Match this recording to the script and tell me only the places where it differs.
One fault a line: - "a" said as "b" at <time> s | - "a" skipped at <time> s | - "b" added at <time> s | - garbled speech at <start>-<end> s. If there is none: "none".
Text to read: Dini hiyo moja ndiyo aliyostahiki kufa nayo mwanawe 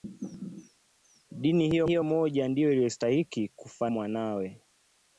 - "hiyo" added at 1.9 s
- "nayo" skipped at 3.9 s